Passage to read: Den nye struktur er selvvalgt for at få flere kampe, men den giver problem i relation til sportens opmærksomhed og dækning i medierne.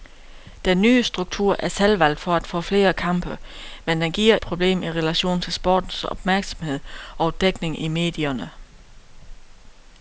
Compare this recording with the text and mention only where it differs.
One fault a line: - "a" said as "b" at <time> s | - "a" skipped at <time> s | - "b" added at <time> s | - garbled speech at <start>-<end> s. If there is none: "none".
none